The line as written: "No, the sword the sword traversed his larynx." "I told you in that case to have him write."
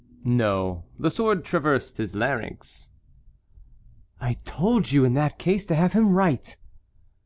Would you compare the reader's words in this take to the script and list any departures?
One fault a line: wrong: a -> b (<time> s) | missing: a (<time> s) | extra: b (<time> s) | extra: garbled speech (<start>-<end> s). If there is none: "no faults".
missing: the sword (1.4 s)